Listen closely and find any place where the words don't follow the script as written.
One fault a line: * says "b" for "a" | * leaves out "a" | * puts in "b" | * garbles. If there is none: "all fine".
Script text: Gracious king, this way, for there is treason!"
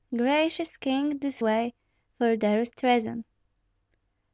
all fine